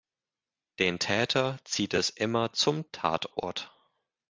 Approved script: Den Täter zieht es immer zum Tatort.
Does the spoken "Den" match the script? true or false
true